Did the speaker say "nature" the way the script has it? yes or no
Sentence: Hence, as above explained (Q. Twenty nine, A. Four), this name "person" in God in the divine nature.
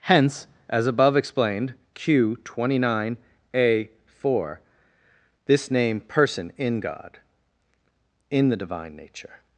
yes